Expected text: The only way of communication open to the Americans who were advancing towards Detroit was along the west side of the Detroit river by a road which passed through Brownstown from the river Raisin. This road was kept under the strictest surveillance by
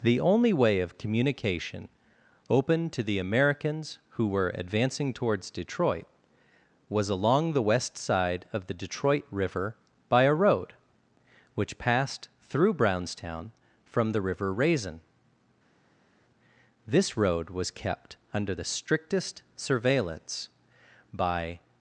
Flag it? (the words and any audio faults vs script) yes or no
no